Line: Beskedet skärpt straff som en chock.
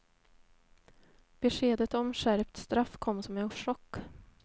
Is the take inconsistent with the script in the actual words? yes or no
yes